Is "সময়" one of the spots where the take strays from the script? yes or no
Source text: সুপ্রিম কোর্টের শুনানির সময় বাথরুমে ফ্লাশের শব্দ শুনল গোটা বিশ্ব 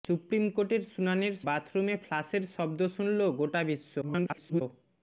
yes